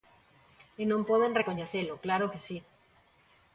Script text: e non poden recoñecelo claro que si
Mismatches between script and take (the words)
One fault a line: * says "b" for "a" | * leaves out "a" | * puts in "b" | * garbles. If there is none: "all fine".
all fine